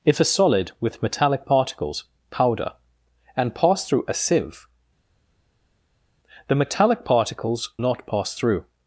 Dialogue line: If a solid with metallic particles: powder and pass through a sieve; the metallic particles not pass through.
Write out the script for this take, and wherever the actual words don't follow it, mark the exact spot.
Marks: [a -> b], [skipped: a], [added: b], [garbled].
If a solid with metallic particles: powder and pass through a sieve; the metallic particles not pass through.